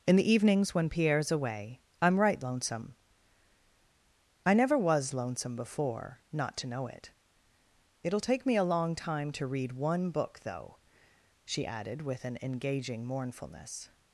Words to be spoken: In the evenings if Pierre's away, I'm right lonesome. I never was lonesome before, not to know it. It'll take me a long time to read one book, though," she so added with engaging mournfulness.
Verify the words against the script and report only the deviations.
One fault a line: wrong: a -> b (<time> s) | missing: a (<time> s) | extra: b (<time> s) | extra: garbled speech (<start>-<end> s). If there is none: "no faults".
wrong: if -> when (0.7 s)
missing: so (11.7 s)
extra: an (12.2 s)